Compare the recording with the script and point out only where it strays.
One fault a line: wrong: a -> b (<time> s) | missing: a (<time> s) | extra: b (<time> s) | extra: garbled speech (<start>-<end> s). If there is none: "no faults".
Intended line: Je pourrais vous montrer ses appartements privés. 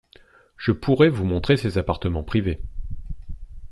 no faults